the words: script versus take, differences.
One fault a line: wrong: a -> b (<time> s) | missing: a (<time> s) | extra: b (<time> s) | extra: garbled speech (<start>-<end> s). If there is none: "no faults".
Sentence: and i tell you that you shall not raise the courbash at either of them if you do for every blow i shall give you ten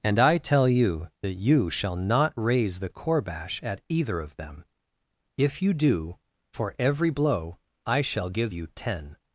no faults